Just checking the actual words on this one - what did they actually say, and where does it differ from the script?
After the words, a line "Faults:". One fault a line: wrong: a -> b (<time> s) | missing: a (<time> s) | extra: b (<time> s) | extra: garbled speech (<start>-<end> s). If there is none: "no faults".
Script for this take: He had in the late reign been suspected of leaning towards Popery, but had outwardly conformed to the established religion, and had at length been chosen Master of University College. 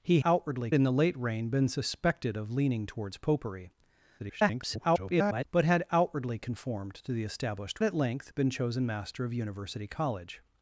He outwardly in the late reign been suspected of leaning towards Popery, [garbled] but had outwardly conformed to the established at length been chosen Master of University College.
Faults:
wrong: had -> outwardly (0.2 s)
extra: garbled speech (4.2-5.4 s)
missing: religion and had (7.8 s)